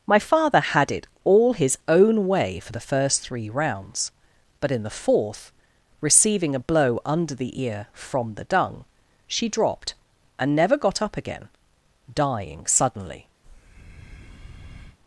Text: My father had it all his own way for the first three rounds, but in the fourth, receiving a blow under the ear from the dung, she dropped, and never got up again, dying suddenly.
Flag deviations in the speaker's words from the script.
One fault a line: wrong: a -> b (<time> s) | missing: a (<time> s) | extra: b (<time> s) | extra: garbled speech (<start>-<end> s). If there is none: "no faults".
no faults